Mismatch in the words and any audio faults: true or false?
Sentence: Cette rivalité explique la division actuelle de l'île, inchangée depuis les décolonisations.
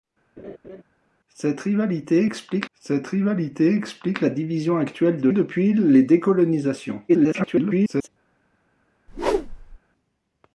true